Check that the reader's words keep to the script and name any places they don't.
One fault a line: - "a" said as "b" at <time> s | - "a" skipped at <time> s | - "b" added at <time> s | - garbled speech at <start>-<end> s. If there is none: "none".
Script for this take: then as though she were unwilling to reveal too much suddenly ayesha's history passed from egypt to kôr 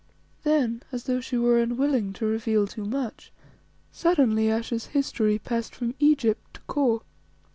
none